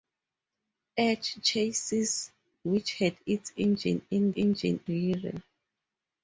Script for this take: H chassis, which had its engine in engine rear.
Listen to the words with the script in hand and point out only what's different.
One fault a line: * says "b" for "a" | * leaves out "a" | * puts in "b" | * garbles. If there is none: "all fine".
all fine